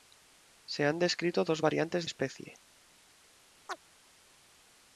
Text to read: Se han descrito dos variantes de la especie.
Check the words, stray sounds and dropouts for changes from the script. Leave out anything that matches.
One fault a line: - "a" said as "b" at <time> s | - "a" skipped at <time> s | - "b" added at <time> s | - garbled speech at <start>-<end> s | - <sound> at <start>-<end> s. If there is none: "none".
- "de la" skipped at 2.1 s
- chirp at 3.7-3.8 s